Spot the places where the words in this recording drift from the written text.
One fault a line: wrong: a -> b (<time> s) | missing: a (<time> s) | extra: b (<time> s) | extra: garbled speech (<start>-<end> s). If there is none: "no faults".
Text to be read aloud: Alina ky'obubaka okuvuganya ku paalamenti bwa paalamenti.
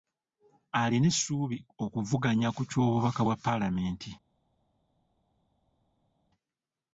wrong: ky'obubaka -> essuubi (1.1 s)
wrong: paalamenti -> ky'obubaka (2.7 s)